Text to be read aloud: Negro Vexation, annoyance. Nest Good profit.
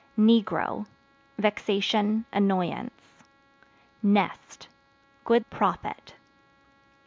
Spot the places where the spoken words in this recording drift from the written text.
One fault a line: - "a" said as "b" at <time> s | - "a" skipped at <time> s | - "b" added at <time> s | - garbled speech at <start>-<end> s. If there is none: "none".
none